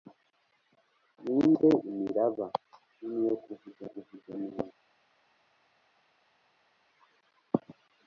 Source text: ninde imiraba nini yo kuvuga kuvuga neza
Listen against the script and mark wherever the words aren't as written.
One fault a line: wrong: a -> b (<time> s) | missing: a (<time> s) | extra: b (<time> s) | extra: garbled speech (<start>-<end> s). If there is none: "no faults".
no faults